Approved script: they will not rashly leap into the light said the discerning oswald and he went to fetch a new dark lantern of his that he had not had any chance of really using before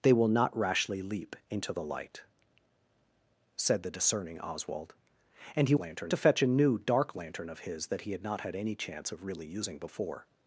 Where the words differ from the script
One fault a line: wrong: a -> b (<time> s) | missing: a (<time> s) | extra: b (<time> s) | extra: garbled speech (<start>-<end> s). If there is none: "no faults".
wrong: went -> lantern (5.8 s)